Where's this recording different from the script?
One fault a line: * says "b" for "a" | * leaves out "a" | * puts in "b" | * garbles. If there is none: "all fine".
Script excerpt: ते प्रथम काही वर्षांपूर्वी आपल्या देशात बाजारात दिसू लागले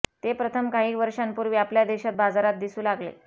all fine